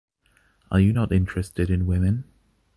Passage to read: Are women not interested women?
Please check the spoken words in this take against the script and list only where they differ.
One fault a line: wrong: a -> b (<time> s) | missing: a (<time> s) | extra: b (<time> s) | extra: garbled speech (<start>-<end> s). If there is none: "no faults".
wrong: women -> you (0.8 s)
extra: in (1.7 s)